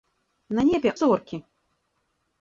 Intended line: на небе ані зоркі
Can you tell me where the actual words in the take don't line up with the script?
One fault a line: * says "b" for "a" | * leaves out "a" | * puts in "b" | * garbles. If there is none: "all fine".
* leaves out "ані"